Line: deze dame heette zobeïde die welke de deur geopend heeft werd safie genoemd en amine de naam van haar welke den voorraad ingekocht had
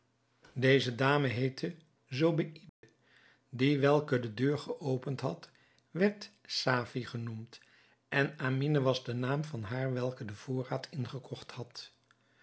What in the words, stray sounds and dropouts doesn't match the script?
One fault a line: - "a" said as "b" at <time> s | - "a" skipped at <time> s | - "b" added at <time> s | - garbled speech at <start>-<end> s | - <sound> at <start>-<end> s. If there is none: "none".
- dropout at 2.7-2.8 s
- "heeft" said as "had" at 5.2 s
- "was" added at 8.8 s